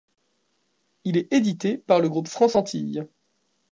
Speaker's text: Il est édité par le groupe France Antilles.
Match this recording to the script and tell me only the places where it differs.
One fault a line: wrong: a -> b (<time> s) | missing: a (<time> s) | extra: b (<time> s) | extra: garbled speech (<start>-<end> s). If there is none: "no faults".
no faults